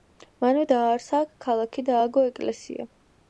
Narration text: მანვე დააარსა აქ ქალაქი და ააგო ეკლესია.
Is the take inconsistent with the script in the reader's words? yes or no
no